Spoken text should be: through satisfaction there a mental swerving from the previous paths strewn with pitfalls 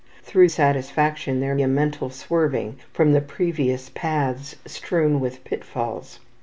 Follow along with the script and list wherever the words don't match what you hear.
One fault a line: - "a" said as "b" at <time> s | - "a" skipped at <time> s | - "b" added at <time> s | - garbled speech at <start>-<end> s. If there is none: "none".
none